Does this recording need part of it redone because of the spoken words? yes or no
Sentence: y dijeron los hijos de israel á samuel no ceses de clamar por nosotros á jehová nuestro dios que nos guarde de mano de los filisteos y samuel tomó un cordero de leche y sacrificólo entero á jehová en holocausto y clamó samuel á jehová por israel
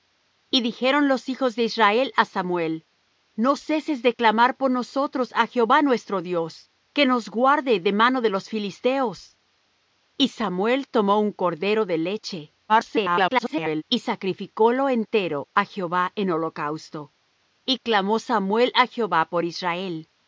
yes